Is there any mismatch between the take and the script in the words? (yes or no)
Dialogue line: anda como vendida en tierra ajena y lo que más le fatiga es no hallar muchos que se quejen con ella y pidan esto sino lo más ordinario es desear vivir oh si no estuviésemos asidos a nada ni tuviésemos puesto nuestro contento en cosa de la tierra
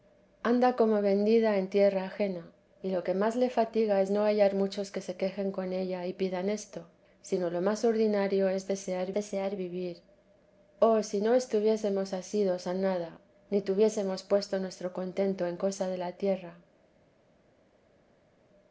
yes